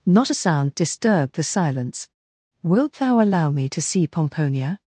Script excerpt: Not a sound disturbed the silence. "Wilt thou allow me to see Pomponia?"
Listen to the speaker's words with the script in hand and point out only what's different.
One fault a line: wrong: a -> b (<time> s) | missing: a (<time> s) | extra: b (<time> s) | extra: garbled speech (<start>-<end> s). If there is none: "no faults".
no faults